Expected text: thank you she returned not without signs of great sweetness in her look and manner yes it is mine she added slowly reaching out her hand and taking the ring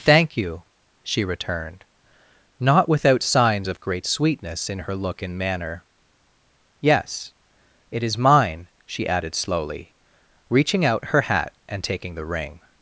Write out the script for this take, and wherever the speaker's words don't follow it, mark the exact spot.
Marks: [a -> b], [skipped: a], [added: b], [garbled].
thank you she returned not without signs of great sweetness in her look and manner yes it is mine she added slowly reaching out her [hand -> hat] and taking the ring